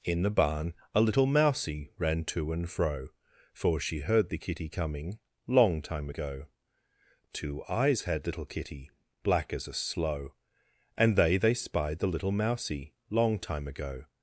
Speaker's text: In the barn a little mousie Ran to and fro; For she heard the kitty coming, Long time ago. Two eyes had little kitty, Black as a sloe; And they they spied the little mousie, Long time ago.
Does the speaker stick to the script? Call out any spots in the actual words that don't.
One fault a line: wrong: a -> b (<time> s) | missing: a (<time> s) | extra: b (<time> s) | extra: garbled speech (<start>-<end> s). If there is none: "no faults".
no faults